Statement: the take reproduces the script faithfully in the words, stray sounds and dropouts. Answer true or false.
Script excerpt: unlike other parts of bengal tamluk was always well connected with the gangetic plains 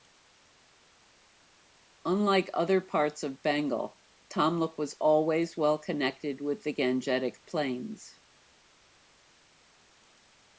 true